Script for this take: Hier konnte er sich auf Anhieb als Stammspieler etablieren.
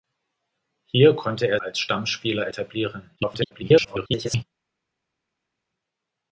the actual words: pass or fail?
fail